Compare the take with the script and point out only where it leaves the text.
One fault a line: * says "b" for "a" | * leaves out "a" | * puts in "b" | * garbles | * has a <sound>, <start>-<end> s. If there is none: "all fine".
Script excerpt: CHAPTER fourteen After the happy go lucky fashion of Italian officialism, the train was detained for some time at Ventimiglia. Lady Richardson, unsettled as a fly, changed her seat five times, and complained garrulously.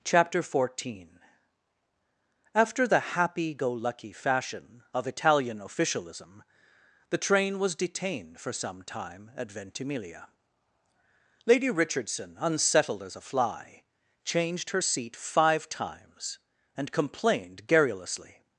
all fine